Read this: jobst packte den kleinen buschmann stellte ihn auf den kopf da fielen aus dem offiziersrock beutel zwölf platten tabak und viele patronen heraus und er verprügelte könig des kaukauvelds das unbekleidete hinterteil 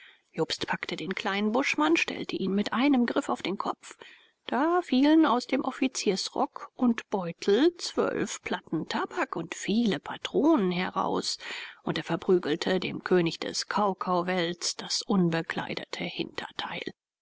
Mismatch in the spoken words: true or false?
true